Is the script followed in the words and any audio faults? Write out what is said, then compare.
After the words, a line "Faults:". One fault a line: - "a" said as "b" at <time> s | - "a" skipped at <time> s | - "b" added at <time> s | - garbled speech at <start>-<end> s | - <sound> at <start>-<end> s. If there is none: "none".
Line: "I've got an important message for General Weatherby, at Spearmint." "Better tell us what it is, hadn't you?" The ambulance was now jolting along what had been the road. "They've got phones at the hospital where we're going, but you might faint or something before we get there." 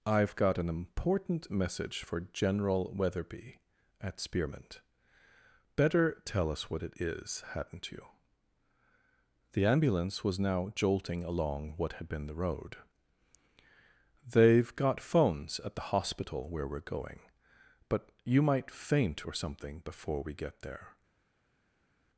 "I've got an important message for General Weatherby, at Spearmint." "Better tell us what it is, hadn't you?" The ambulance was now jolting along what had been the road. "They've got phones at the hospital where we're going, but you might faint or something before we get there."
Faults:
none